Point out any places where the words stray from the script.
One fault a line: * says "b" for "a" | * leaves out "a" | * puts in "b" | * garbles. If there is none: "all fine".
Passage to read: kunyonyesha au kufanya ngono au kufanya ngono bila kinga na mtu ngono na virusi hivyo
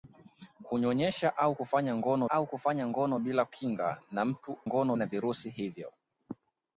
all fine